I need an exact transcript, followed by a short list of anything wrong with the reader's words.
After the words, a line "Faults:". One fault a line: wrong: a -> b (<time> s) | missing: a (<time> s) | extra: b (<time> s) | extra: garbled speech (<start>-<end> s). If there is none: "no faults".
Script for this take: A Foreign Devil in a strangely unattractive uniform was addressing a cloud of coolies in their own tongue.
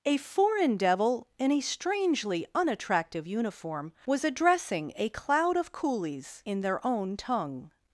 A Foreign Devil in a strangely unattractive uniform was addressing a cloud of coolies in their own tongue.
Faults:
no faults